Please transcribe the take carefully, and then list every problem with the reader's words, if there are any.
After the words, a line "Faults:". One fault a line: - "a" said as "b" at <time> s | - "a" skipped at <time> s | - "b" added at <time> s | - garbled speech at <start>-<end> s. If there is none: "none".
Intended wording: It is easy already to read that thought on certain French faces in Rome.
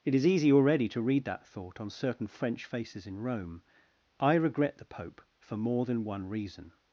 It is easy already to read that thought on certain French faces in Rome. "I regret the Pope for more than one reason
Faults:
- "I regret the Pope for more than one reason" added at 4.2 s